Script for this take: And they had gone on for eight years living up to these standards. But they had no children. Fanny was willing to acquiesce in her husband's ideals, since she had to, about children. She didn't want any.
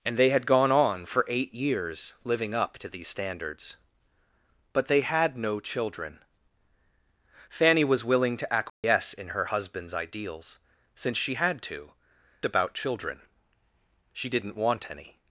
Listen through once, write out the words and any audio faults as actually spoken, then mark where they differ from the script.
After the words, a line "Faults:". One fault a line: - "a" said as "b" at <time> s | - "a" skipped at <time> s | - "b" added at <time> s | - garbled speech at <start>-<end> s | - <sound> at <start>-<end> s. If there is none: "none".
And they had gone on for eight years living up to these standards. But they had no children. Fanny was willing to acquiesce in her husband's ideals, since she had to, about children. She didn't want any.
Faults:
- dropout at 8.7-8.8 s